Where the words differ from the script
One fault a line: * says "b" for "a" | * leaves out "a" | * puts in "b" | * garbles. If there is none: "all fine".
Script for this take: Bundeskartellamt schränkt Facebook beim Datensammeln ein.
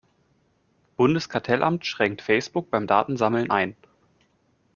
all fine